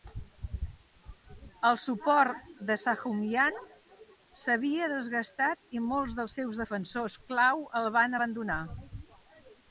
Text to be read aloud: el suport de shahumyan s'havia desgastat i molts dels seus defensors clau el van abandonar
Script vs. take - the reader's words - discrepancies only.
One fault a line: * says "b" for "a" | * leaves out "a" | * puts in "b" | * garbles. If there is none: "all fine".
all fine